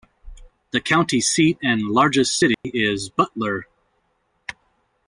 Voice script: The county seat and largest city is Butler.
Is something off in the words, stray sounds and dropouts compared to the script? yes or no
yes